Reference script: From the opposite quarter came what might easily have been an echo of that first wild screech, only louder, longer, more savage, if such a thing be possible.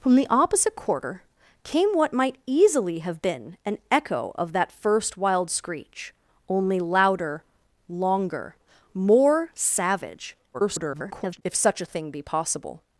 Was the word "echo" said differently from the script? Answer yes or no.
no